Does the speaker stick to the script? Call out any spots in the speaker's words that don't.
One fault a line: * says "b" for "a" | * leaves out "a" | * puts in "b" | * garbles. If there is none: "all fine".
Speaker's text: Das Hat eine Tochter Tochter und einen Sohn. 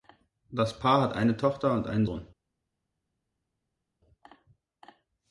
* puts in "Paar"
* leaves out "Tochter"